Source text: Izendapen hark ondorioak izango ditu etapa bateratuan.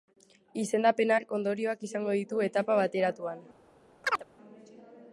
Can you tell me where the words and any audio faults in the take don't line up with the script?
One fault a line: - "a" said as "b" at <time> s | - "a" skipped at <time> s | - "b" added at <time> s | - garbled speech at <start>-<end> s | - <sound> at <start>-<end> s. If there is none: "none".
- chirp at 4.0-4.2 s